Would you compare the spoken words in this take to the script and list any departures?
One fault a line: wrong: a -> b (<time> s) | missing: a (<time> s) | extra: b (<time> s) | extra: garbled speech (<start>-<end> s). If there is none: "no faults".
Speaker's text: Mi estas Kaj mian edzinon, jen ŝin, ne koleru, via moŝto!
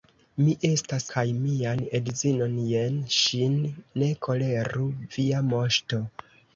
no faults